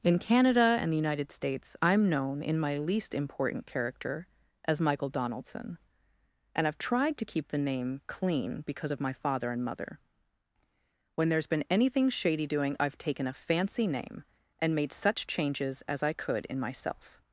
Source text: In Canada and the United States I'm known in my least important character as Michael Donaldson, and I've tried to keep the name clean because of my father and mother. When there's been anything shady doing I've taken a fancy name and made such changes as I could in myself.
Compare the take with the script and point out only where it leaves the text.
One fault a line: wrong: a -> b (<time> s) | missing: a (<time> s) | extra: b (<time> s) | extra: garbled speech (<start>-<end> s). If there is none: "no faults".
no faults